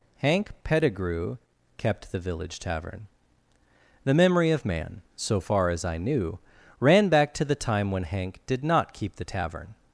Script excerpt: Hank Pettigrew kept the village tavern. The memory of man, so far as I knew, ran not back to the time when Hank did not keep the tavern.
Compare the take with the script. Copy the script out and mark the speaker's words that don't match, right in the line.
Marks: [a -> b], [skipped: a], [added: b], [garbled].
Hank Pettigrew kept the village tavern. The memory of man, so far as I knew, ran [skipped: not] back to the time when Hank did not keep the tavern.